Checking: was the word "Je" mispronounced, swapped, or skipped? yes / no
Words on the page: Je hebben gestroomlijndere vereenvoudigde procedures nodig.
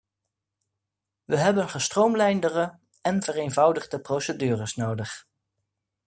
yes